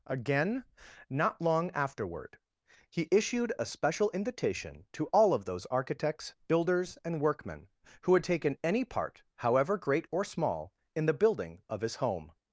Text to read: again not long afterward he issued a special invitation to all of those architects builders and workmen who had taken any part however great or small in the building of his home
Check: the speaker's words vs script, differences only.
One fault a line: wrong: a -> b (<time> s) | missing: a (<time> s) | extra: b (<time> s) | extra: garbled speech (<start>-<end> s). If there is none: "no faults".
no faults